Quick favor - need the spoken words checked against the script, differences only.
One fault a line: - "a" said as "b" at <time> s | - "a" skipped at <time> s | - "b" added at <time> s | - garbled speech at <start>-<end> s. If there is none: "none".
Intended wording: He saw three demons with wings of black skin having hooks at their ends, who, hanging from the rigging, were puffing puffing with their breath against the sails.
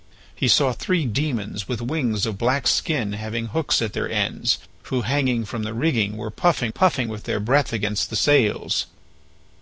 none